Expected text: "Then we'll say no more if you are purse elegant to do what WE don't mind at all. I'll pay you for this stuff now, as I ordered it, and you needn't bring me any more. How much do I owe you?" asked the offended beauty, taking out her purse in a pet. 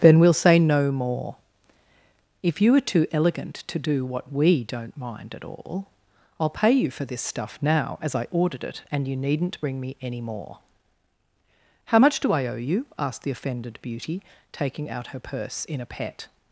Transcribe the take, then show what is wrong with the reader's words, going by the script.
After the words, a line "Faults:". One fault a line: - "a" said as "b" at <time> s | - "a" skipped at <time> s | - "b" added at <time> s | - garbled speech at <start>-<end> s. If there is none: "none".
"Then we'll say no more if you are too elegant to do what WE don't mind at all. I'll pay you for this stuff now, as I ordered it, and you needn't bring me any more. How much do I owe you?" asked the offended beauty, taking out her purse in a pet.
Faults:
- "purse" said as "too" at 2.8 s